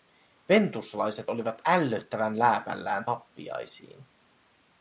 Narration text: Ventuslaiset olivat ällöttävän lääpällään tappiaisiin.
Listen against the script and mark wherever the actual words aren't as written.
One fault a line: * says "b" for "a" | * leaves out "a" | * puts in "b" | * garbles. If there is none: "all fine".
all fine